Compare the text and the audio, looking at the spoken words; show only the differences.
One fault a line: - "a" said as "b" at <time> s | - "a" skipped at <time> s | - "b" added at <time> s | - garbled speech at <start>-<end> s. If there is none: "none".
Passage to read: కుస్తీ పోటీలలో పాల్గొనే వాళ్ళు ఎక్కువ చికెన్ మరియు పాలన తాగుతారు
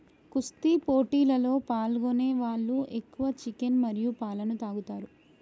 none